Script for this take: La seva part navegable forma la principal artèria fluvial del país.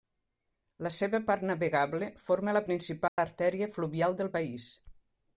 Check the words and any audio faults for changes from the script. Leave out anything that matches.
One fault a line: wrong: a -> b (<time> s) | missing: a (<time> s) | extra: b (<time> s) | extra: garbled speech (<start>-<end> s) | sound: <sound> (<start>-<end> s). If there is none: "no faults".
sound: dropout (3.1-3.2 s)